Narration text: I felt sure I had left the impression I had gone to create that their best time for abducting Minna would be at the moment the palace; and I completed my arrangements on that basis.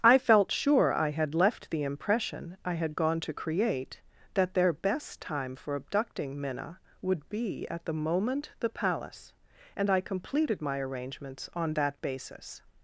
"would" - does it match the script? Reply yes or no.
yes